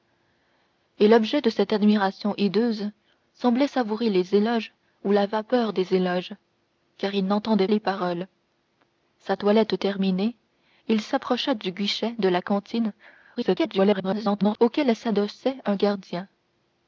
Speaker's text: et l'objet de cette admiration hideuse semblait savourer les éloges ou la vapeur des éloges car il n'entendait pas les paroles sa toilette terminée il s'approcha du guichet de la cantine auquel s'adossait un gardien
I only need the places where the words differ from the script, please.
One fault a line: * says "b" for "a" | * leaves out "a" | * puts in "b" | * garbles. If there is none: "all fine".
* leaves out "pas"
* garbles